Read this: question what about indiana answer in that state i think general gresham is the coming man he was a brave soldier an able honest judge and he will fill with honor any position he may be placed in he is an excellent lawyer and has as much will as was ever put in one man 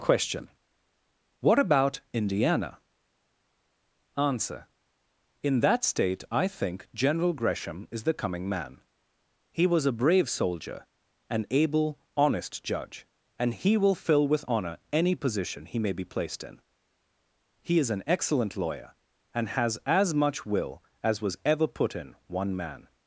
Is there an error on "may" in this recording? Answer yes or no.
no